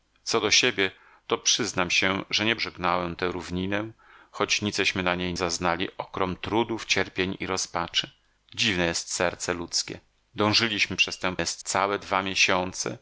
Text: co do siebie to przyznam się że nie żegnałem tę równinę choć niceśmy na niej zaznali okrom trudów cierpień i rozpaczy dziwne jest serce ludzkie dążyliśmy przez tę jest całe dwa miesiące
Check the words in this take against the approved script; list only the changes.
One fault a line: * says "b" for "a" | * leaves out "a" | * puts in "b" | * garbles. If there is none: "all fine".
all fine